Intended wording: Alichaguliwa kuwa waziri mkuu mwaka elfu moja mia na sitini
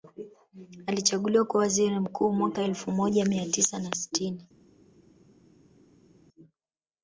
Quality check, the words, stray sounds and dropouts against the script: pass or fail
fail